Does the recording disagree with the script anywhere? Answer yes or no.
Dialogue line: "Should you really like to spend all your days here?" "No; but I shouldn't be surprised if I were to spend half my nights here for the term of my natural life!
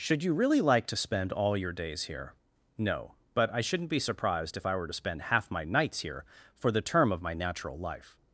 no